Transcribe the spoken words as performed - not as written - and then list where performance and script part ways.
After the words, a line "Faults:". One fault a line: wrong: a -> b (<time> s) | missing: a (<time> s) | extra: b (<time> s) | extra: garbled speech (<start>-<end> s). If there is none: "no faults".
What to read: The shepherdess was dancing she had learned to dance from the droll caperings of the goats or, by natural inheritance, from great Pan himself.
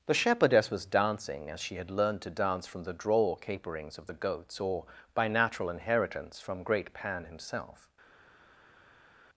The shepherdess was dancing as she had learned to dance from the droll caperings of the goats or, by natural inheritance, from great Pan himself.
Faults:
extra: as (1.5 s)